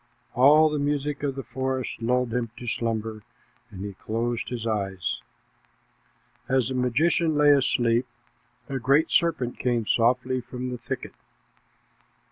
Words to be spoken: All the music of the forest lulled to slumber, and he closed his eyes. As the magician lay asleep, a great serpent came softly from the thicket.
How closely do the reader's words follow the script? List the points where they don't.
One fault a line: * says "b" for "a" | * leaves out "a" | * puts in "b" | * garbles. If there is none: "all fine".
* puts in "him"